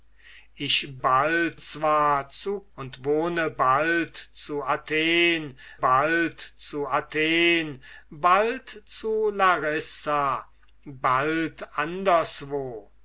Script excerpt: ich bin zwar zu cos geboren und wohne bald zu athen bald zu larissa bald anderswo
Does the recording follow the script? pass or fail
fail